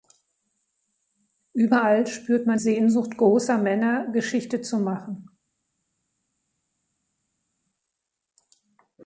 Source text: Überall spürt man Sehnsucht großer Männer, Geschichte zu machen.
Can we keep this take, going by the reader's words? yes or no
yes